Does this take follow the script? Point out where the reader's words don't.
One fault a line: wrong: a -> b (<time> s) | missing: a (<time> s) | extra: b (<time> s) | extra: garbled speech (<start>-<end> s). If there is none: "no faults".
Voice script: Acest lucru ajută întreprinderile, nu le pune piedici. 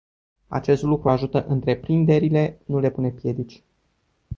no faults